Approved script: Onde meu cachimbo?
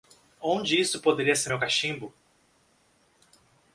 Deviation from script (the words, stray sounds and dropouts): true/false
true